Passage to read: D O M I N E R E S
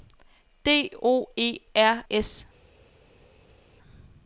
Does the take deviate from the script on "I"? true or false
true